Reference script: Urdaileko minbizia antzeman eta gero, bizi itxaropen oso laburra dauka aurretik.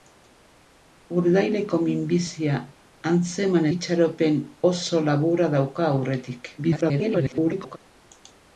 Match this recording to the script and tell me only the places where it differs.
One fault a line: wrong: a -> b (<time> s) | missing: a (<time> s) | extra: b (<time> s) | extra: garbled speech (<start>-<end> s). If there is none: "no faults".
missing: eta gero bizi (3.7 s)
extra: garbled speech (6.6-7.8 s)